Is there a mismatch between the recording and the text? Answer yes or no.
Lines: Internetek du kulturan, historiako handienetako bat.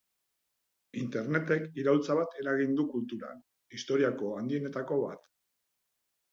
yes